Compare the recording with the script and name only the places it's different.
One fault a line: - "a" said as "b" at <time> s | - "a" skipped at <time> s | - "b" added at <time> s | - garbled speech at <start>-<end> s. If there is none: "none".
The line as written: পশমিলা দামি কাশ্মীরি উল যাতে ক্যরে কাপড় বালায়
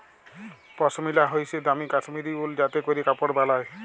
- "হইসে" added at 1.3 s